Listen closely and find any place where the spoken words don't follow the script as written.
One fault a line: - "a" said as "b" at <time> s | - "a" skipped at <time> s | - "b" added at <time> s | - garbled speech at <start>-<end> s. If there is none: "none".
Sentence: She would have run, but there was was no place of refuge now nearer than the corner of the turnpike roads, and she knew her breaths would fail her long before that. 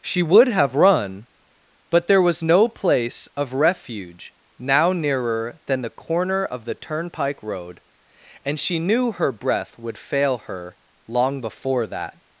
- "was" skipped at 2.4 s
- "roads" said as "road" at 7.4 s
- "breaths" said as "breath" at 9.3 s